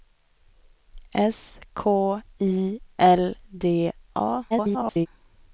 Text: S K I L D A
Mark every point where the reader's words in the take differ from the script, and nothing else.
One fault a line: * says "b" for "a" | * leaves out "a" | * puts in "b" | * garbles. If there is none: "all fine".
* garbles